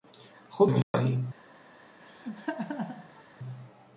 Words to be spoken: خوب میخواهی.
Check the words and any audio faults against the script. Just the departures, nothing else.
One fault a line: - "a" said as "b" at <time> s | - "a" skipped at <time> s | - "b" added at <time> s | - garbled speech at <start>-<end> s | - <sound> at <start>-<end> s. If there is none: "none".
- dropout at 0.8-0.9 s
- laugh at 2.0-3.2 s